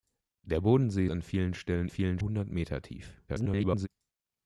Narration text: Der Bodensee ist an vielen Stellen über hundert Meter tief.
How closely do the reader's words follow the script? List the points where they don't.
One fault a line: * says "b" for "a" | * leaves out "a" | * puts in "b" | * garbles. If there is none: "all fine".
* leaves out "ist"
* says "vielen" for "über"
* garbles